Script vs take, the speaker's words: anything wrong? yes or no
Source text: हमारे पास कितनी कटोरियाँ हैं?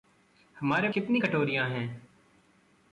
yes